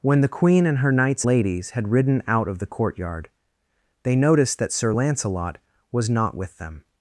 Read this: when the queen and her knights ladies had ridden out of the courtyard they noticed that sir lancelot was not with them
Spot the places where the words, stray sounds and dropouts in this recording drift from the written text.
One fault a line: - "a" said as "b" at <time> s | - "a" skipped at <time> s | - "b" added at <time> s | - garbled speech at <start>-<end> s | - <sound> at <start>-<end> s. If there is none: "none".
none